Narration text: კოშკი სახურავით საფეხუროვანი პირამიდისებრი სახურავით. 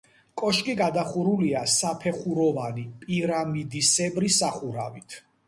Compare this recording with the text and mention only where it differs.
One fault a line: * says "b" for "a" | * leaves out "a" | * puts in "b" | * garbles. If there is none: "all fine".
* says "გადახურულია" for "სახურავით"